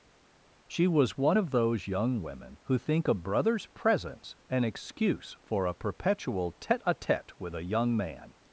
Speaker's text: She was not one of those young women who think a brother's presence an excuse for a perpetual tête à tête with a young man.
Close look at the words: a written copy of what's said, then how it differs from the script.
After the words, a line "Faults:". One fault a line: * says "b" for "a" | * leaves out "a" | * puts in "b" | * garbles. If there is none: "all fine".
She was one of those young women who think a brother's presence an excuse for a perpetual tête à tête with a young man.
Faults:
* leaves out "not"